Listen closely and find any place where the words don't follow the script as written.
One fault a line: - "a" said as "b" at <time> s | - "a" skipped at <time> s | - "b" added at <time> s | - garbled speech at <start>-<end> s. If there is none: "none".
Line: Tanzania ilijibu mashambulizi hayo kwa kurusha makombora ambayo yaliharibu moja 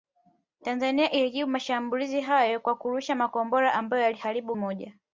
none